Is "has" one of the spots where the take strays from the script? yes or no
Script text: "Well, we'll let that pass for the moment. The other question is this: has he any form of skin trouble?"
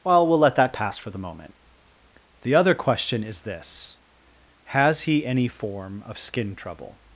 no